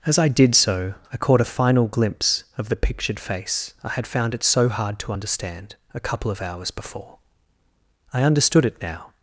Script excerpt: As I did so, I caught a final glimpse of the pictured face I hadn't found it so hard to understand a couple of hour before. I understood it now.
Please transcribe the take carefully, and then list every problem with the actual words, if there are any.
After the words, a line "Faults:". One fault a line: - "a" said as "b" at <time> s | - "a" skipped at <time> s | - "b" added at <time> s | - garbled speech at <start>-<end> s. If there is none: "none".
As I did so, I caught a final glimpse of the pictured face I had found it so hard to understand a couple of hours before. I understood it now.
Faults:
- "hadn't" said as "had" at 3.9 s
- "hour" said as "hours" at 6.4 s